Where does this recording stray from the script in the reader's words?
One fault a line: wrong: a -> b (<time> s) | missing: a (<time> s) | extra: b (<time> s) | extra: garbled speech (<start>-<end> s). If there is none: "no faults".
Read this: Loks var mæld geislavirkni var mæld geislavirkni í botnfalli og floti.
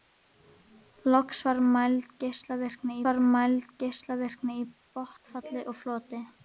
no faults